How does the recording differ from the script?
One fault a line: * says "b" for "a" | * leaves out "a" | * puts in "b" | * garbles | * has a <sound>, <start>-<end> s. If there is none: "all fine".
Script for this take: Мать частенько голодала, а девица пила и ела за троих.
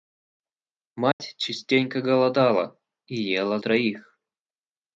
* has a dropout, 1.1-1.2 s
* leaves out "а девица пила"
* leaves out "за"